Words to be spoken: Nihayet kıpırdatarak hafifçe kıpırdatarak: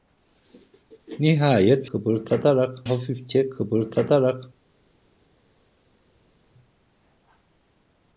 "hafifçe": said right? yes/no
yes